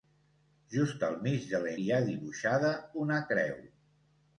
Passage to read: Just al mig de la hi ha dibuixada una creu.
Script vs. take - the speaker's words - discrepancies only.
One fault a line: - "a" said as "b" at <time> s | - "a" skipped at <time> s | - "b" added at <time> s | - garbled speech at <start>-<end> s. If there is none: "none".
none